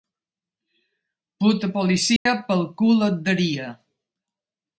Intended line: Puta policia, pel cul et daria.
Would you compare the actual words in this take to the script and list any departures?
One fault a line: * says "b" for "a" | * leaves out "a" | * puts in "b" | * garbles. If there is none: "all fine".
all fine